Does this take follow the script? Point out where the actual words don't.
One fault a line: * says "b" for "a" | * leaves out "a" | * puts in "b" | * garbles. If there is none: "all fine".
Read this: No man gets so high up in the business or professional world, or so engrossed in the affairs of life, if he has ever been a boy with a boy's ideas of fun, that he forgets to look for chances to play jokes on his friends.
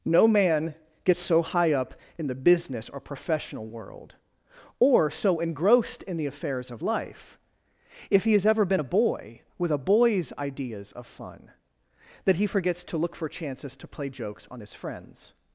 all fine